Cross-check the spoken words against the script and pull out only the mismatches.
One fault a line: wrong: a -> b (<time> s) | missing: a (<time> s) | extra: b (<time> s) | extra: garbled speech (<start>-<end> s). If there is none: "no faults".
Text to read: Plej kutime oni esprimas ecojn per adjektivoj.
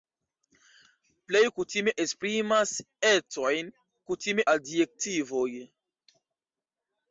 missing: oni (1.9 s)
wrong: per -> kutime (4.1 s)